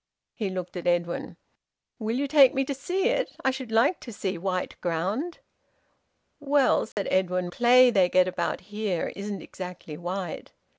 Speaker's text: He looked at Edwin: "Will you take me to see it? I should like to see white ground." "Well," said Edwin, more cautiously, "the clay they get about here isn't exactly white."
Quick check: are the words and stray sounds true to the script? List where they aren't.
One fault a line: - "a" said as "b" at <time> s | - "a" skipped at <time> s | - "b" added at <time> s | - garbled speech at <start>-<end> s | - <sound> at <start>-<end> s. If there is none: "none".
- dropout at 6.9-7.0 s
- "more cautiously the" skipped at 7.5 s